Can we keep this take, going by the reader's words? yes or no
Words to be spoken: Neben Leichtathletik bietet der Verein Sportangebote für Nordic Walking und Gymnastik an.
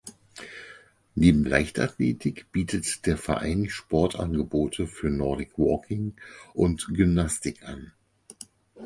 yes